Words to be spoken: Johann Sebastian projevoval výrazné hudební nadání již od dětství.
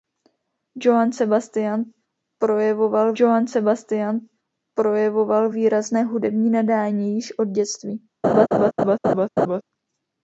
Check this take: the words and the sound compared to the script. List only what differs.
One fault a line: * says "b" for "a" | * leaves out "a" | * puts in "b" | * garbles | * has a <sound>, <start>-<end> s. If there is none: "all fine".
* puts in "johann Sebastian projevoval"
* has a laugh, 8.2-9.6 s